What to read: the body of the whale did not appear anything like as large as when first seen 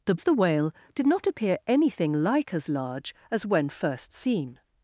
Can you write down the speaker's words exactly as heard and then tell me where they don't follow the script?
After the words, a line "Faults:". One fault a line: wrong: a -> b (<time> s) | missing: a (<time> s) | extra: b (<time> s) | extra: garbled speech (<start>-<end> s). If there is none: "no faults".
the of the whale did not appear anything like as large as when first seen
Faults:
missing: body (0.1 s)